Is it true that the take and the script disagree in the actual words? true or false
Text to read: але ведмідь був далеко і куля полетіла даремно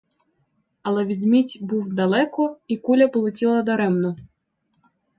false